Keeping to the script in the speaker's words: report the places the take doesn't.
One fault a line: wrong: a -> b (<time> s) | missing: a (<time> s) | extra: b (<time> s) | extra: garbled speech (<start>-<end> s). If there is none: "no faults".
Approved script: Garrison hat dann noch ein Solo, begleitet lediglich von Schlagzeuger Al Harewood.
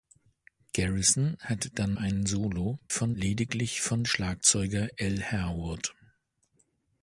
missing: noch (1.9 s)
wrong: begleitet -> von (2.9 s)